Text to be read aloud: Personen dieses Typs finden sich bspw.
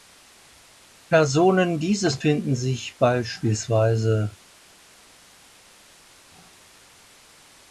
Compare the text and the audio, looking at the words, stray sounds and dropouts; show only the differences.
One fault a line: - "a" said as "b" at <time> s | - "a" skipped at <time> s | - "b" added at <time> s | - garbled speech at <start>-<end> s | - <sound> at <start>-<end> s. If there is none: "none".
- "Typs" skipped at 2.2 s